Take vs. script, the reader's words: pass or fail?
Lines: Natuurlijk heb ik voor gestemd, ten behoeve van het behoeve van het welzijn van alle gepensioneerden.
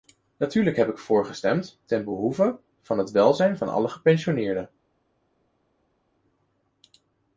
fail